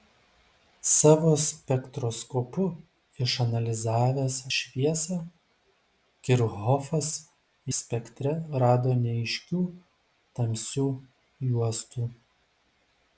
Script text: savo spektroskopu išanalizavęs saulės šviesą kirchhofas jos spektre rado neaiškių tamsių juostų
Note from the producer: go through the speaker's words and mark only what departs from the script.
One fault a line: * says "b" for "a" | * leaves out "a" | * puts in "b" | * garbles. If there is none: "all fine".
* leaves out "saulės"
* leaves out "jos"